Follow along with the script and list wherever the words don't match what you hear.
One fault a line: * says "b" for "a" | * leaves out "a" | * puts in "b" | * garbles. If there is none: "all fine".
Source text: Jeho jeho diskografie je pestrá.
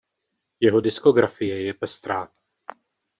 * leaves out "jeho"